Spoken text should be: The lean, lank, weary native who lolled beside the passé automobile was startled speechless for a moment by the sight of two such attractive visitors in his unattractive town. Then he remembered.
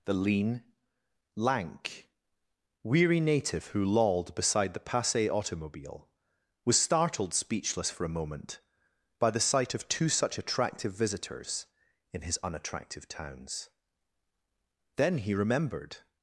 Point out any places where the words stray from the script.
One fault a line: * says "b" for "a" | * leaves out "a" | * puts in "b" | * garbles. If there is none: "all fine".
* says "towns" for "town"